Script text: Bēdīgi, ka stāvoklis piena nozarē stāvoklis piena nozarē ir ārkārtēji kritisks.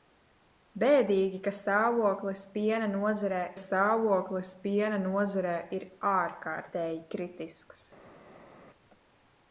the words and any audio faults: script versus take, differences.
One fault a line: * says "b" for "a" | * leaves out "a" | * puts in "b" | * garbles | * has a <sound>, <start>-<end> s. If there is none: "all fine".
all fine